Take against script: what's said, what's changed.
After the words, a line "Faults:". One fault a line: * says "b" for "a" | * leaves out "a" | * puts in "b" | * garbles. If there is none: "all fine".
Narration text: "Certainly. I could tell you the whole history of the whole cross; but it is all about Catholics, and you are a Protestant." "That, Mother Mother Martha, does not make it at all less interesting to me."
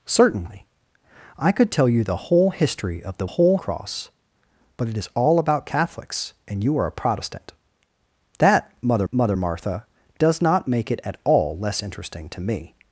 "Certainly. I could tell you the whole history of the whole cross; but it is all about Catholics, and you are a Protestant." "That, Mother Mother Martha, does not make it at all less interesting to me."
Faults:
all fine